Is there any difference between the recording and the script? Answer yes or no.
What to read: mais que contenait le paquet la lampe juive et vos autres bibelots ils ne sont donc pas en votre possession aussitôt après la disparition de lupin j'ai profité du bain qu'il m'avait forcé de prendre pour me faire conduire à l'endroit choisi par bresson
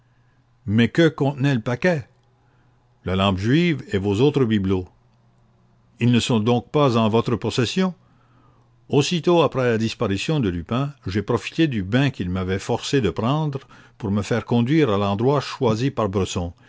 no